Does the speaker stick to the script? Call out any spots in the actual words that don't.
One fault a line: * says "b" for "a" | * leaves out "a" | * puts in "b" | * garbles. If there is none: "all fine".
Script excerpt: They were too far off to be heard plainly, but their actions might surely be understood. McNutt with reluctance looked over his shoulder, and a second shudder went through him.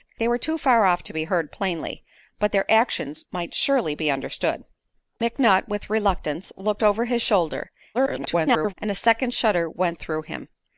* garbles